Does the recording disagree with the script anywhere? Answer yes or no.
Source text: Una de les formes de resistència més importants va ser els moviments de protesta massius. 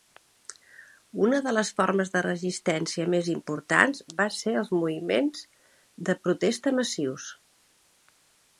no